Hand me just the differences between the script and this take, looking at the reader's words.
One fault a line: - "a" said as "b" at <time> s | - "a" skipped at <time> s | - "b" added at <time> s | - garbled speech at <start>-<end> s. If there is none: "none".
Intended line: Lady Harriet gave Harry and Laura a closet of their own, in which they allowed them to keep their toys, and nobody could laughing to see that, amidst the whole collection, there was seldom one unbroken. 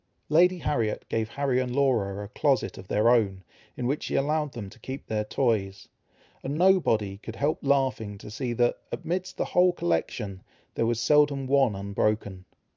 - "they" said as "she" at 4.0 s
- "help" added at 7.3 s